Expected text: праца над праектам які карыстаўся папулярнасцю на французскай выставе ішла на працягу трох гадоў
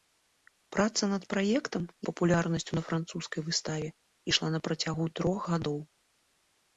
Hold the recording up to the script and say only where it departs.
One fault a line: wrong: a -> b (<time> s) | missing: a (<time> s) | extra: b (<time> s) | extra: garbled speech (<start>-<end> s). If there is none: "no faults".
missing: які карыстаўся (1.8 s)